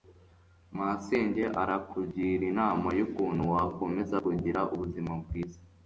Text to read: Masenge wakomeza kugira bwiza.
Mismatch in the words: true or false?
true